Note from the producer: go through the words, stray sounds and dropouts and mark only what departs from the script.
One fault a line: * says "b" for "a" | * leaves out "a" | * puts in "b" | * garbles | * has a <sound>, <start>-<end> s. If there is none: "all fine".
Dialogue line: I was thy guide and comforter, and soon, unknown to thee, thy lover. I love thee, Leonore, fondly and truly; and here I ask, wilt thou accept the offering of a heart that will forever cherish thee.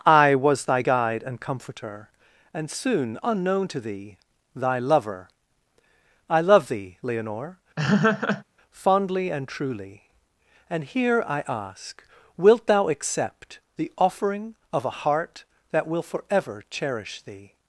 * has a laugh, 7.8-8.4 s